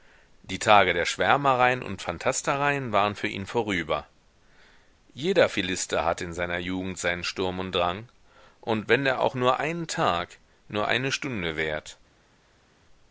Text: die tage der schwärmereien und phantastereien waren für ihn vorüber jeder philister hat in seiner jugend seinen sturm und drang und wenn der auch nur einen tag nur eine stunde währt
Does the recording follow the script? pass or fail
pass